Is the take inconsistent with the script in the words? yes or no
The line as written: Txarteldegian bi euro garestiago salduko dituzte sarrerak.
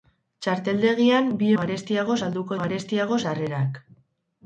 yes